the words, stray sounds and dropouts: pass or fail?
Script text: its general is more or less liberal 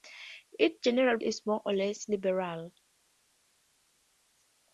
pass